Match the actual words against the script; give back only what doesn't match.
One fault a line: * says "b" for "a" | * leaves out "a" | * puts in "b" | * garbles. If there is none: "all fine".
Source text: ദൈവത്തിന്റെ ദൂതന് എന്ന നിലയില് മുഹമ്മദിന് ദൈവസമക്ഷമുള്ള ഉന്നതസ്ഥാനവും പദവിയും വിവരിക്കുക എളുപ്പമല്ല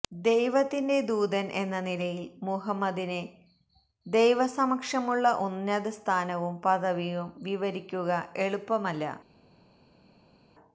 all fine